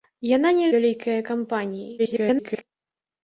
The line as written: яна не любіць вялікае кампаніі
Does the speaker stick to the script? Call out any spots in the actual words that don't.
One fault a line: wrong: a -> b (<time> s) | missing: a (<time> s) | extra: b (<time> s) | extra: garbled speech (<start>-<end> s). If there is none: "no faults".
missing: любіць (0.7 s)
extra: garbled speech (2.0-2.6 s)